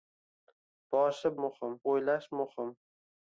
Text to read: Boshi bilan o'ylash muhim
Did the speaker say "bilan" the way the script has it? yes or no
no